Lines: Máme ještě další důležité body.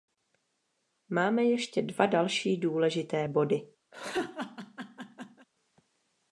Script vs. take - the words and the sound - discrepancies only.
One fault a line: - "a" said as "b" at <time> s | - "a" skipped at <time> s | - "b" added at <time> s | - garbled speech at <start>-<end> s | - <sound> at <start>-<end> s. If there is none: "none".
- "dva" added at 1.8 s
- laugh at 3.9-5.5 s